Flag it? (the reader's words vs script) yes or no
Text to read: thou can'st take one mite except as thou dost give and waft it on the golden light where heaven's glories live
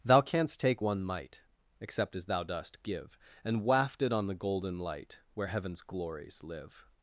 no